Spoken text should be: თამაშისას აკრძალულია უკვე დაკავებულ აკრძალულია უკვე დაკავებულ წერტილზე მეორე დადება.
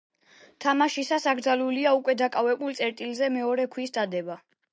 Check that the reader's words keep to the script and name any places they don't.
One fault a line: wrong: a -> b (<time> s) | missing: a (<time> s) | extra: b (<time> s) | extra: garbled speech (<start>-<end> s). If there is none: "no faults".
missing: აკრძალულია უკვე დაკავებულ (2.8 s)
extra: ქვის (3.8 s)